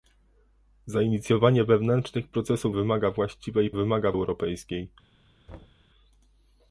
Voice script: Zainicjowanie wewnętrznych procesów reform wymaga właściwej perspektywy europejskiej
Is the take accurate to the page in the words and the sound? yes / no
no